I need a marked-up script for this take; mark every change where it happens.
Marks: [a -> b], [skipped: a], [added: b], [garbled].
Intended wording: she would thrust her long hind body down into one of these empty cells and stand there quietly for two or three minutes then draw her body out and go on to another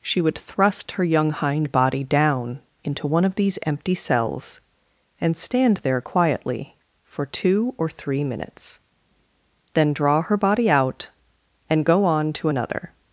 she would thrust her [long -> young] hind body down into one of these empty cells and stand there quietly for two or three minutes then draw her body out and go on to another